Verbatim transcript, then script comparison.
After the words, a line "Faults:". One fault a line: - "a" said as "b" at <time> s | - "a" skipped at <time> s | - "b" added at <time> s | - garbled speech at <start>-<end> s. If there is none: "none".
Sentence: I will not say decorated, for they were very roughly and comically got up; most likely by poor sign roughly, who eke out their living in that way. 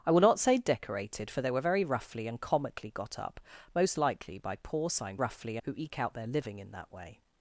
I will not say decorated, for they were very roughly and comically got up; most likely by poor sign roughly, who eke out their living in that way.
Faults:
none